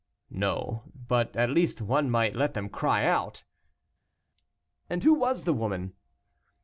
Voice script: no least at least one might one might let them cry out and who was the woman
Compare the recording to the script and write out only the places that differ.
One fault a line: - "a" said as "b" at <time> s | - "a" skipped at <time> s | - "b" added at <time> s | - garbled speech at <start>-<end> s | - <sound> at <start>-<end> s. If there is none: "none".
- "least" said as "but" at 1.1 s
- "one might" skipped at 2.4 s